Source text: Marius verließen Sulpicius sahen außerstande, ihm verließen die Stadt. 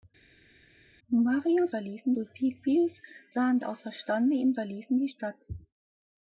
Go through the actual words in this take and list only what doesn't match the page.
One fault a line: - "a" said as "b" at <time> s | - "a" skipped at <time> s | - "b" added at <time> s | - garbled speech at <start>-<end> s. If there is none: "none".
none